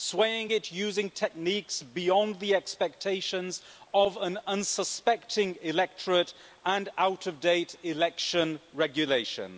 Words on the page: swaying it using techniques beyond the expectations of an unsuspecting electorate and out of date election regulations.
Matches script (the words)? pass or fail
pass